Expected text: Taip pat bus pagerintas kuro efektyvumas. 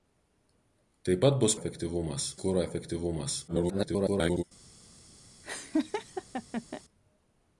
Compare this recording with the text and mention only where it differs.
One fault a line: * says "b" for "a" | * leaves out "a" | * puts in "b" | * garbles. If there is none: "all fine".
* says "efektyvumas" for "pagerintas"
* garbles